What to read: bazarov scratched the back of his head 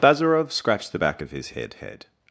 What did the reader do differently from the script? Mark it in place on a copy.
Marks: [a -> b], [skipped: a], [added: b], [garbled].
bazarov scratched the back of his head [added: head]